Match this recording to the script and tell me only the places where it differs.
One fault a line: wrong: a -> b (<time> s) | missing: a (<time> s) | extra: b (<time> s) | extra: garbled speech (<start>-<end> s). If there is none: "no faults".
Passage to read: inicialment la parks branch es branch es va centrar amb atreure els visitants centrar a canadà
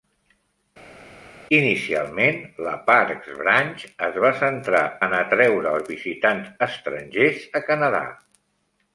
missing: branch es (4.2 s)
wrong: amb -> en (5.1 s)
wrong: centrar -> estrangers (6.7 s)